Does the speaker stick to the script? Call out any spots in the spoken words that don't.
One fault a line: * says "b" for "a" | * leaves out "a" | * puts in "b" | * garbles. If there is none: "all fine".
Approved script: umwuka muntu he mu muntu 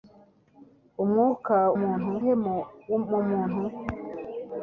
all fine